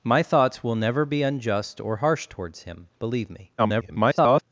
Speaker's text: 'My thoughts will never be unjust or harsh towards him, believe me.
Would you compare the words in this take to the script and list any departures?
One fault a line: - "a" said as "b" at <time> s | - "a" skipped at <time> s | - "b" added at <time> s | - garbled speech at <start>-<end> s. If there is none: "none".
- garbled speech at 3.6-4.4 s